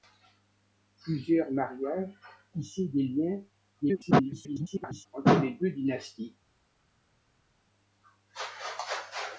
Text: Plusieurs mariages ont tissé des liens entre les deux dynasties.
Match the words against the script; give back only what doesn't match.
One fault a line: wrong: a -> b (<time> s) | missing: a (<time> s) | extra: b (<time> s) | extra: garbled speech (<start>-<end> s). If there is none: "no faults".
missing: ont (2.1 s)
extra: garbled speech (3.8-5.1 s)